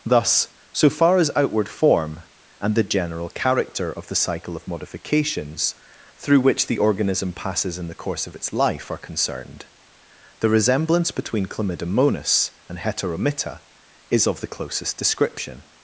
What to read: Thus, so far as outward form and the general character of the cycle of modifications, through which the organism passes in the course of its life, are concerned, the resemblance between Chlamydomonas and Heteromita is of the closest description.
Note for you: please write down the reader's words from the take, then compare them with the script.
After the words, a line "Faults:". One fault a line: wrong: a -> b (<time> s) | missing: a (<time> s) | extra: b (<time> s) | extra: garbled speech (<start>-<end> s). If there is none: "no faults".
Thus, so far as outward form and the general character of the cycle of modifications, through which the organism passes in the course of its life, are concerned, the resemblance between Chlamydomonas and Heteromita is of the closest description.
Faults:
no faults